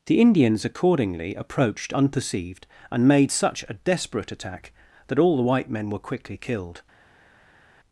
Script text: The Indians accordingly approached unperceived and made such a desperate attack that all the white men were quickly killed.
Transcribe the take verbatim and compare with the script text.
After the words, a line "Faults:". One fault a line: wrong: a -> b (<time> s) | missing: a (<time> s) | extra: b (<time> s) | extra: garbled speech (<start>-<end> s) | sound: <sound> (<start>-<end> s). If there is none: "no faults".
The Indians accordingly approached unperceived and made such a desperate attack that all the white men were quickly killed.
Faults:
no faults